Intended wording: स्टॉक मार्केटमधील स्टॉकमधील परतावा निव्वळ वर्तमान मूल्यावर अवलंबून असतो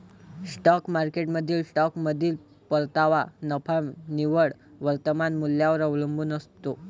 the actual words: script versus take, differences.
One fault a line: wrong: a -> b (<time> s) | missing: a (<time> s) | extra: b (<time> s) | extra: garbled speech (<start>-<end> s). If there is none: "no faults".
extra: नफा (3.4 s)